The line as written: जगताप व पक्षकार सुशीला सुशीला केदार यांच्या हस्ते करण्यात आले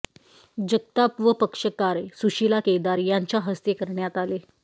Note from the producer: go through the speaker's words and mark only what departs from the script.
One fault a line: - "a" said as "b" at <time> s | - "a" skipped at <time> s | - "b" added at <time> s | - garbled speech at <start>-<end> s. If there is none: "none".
- "सुशीला" skipped at 2.6 s